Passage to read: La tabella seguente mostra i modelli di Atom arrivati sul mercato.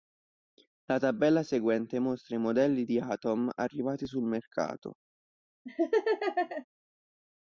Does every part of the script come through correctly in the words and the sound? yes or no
no